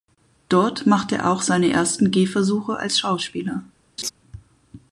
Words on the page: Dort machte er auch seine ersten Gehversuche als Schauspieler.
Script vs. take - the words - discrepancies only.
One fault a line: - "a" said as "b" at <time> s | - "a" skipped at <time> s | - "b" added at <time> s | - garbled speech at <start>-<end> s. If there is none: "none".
none